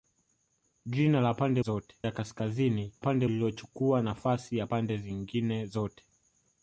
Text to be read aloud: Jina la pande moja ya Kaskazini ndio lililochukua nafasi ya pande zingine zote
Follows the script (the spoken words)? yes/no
no